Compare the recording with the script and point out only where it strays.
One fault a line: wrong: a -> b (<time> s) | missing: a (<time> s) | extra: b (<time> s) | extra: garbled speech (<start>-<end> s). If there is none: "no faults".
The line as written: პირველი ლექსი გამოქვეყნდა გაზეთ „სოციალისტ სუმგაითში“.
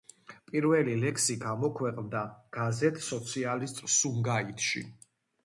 no faults